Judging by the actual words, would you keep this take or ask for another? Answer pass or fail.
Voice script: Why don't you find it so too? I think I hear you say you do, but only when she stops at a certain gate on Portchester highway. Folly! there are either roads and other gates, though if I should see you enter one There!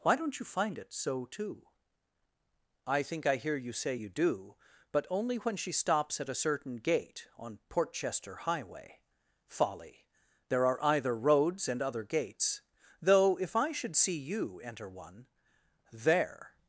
pass